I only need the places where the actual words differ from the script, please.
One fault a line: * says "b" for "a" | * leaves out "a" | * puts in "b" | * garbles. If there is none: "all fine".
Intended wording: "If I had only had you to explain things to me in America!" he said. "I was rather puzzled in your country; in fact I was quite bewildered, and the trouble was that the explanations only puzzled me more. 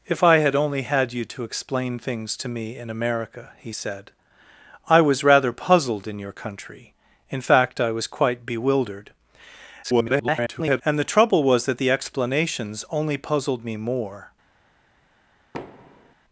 * garbles